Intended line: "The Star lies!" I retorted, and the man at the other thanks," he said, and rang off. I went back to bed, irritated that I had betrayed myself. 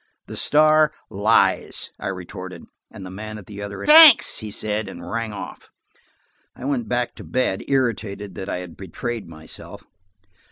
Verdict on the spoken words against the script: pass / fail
pass